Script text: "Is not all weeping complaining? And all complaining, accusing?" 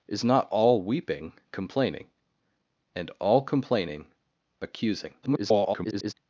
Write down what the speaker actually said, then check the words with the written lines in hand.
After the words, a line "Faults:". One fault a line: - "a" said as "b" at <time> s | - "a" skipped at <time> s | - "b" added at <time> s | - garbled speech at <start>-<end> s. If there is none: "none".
"Is not all weeping complaining? And all complaining, accusing?" [garbled]
Faults:
- garbled speech at 5.2-6.1 s